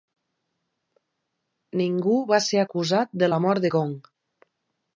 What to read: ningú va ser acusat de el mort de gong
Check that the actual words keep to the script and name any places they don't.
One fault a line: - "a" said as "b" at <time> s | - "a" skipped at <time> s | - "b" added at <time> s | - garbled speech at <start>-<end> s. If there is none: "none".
- "el" said as "la" at 3.3 s